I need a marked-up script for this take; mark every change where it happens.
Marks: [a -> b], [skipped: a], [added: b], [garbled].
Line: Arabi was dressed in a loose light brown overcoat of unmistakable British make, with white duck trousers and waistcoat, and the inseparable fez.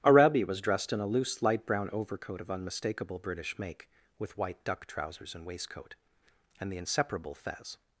Arabi was dressed in a loose light brown overcoat of unmistakable British make, with white duck trousers and waistcoat, and the inseparable fez.